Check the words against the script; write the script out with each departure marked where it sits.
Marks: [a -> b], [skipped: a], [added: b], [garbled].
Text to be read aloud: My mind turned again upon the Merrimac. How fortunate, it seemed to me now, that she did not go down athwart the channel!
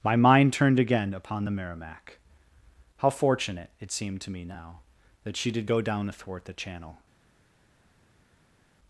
My mind turned again upon the Merrimac. How fortunate, it seemed to me now, that she did [skipped: not] go down athwart the channel!